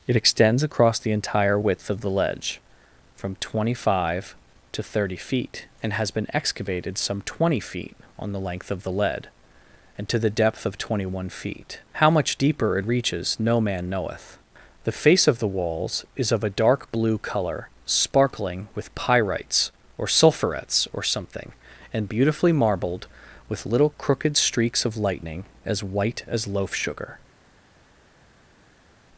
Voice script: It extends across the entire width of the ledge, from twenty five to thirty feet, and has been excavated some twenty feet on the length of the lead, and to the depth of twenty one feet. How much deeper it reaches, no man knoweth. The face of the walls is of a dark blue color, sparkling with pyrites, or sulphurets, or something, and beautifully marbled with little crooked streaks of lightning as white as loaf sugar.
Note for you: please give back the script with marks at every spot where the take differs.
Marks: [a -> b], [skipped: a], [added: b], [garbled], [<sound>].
It extends across the entire width of the ledge, from twenty five to thirty feet, and has been excavated some twenty feet on the length of the lead, and to the depth of twenty one feet. How much deeper it reaches, no man knoweth. The face of the walls is of a dark blue color, sparkling with pyrites, or sulphurets, or something, and beautifully marbled with little crooked streaks of lightning as white as loaf sugar.